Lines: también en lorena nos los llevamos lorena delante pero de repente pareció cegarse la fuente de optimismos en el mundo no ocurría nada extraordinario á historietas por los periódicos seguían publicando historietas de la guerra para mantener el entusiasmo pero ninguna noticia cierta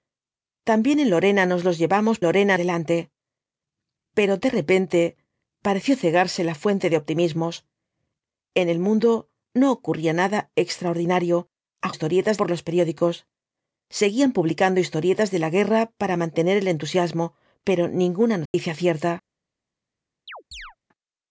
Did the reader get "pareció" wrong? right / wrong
right